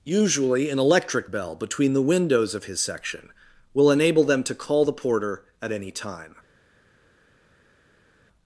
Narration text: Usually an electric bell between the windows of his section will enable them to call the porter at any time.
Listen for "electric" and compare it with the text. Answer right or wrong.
right